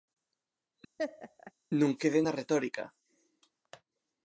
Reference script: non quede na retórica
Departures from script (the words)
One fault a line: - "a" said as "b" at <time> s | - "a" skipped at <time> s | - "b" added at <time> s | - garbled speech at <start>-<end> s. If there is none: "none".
none